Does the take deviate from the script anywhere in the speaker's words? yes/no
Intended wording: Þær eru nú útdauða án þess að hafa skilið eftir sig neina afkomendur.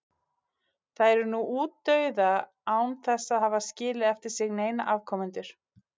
no